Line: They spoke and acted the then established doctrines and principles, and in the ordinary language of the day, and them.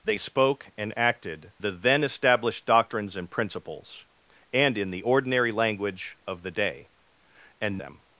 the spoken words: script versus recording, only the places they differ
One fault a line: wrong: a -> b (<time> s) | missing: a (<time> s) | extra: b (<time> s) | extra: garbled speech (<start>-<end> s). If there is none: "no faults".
no faults